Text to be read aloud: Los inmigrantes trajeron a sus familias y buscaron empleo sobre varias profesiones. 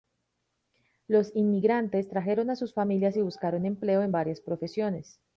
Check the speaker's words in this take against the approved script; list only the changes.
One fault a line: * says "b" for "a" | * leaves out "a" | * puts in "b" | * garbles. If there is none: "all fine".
* says "en" for "sobre"